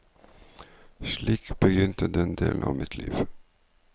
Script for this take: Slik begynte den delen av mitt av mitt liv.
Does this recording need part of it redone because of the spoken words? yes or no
yes